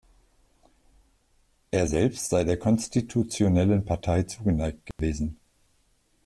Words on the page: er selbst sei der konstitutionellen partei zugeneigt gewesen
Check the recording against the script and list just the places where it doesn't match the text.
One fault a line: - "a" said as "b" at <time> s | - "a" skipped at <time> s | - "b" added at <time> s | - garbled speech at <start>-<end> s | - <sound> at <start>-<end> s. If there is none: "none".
- dropout at 4.9-5.0 s